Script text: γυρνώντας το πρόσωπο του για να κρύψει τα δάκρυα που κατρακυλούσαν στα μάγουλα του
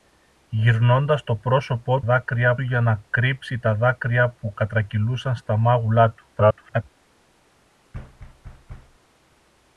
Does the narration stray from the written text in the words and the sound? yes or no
yes